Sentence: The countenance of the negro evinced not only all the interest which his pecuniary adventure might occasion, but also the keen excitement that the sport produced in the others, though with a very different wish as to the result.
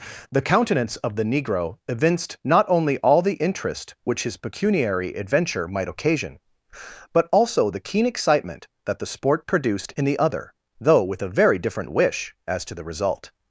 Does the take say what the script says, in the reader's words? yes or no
no